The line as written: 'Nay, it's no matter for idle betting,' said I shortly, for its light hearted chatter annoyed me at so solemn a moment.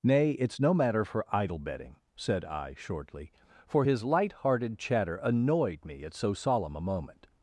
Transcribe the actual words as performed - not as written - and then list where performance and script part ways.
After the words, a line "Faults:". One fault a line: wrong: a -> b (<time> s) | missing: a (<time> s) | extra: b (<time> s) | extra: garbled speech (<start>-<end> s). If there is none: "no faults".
'Nay, it's no matter for idle betting,' said I shortly, for his light hearted chatter annoyed me at so solemn a moment.
Faults:
wrong: its -> his (3.8 s)